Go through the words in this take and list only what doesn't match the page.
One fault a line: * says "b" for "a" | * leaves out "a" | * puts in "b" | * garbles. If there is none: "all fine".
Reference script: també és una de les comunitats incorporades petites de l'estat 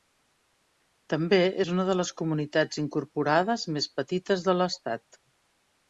* puts in "més"